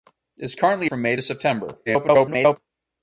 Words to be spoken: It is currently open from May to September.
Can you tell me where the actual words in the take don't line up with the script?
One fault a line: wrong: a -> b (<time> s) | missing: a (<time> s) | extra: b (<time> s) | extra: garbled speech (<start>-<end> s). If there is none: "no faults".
missing: open (0.9 s)
extra: garbled speech (1.9-2.6 s)